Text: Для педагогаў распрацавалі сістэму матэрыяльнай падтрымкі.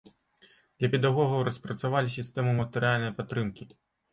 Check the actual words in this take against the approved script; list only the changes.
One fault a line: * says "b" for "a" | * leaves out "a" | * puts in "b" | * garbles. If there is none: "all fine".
all fine